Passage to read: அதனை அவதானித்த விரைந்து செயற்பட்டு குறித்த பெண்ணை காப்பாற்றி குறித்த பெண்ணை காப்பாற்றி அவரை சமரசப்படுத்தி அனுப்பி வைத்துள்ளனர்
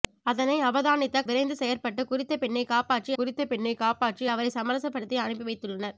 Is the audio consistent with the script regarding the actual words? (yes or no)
yes